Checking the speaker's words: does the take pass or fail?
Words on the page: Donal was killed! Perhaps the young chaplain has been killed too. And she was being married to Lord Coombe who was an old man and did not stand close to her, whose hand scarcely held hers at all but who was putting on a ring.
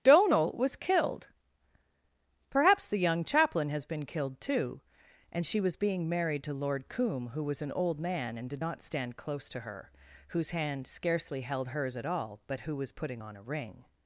pass